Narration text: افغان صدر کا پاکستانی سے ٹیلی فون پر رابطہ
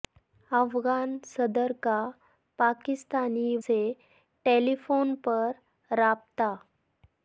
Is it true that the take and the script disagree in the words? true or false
false